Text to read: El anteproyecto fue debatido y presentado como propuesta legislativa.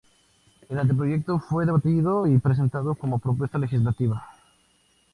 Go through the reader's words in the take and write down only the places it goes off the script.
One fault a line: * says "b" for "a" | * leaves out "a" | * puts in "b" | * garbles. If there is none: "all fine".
all fine